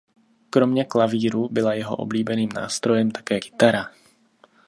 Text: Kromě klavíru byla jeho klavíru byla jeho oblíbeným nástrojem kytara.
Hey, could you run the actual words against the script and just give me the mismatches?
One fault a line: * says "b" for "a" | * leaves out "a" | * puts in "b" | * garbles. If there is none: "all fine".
* leaves out "klavíru byla jeho"
* puts in "také"